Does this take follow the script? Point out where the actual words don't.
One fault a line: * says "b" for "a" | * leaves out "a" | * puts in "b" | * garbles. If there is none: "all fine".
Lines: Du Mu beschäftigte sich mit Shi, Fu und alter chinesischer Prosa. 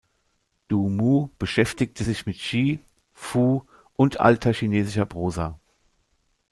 all fine